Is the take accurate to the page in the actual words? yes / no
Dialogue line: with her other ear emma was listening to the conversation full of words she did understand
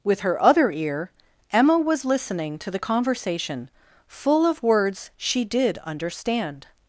yes